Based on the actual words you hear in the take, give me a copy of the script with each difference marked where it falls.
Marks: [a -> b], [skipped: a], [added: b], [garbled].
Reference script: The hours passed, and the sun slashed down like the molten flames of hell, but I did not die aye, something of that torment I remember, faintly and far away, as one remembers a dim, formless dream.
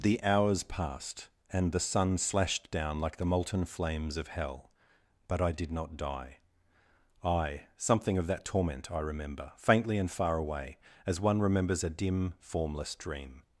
The hours passed, and the sun slashed down like the molten flames of hell, but I did not die aye, something of that torment I remember, faintly and far away, as one remembers a dim, formless dream.